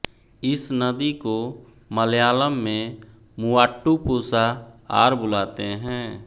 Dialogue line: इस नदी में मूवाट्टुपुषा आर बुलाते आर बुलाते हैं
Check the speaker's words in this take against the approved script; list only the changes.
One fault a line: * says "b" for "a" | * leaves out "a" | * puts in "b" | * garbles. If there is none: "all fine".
* puts in "को मलयालम"
* leaves out "आर बुलाते"